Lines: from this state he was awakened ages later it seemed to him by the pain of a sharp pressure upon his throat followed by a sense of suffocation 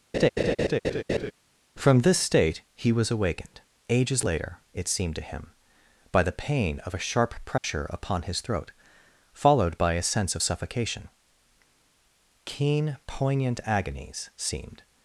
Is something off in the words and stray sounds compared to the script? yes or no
yes